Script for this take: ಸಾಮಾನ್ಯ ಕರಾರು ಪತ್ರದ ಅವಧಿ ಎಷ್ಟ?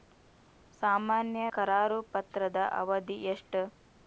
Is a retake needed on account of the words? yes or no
no